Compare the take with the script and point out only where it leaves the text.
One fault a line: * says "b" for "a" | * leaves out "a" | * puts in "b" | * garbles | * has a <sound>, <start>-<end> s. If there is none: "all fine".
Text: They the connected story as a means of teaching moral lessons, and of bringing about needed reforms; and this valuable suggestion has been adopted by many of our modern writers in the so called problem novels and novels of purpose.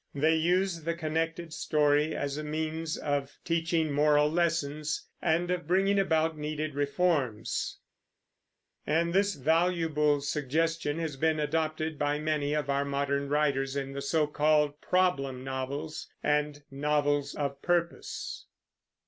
* puts in "use"